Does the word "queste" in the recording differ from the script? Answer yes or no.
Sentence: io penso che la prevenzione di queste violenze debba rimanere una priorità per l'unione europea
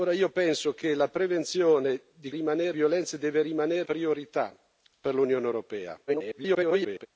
yes